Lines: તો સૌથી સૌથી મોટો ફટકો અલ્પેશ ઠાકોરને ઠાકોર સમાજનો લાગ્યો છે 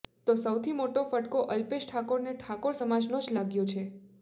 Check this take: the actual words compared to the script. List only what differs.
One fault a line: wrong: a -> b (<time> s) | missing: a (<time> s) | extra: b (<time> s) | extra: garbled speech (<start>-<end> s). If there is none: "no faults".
missing: સૌથી (0.7 s)
extra: જ (3.2 s)